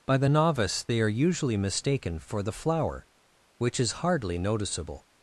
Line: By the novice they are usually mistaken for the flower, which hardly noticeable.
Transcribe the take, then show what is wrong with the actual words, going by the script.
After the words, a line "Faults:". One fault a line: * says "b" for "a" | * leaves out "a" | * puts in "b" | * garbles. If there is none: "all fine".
By the novice they are usually mistaken for the flower, which is hardly noticeable.
Faults:
* puts in "is"